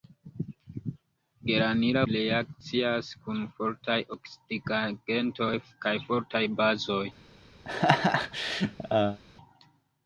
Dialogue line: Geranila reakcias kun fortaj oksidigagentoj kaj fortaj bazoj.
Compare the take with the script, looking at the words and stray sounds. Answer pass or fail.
fail